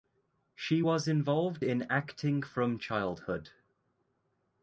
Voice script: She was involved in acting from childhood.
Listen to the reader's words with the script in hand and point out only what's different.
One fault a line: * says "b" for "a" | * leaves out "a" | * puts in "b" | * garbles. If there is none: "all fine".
all fine